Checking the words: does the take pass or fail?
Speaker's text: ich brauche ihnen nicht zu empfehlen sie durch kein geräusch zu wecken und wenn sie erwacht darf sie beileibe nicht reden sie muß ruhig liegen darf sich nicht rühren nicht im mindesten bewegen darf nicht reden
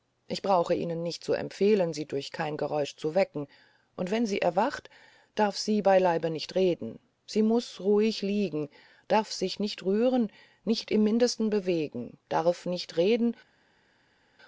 pass